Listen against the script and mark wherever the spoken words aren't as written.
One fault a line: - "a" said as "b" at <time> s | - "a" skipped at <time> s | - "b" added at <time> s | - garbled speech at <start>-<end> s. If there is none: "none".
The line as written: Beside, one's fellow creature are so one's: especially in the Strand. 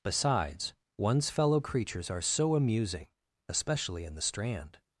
- "Beside" said as "Besides" at 0.0 s
- "creature" said as "creatures" at 1.6 s
- "one's" said as "amusing" at 2.5 s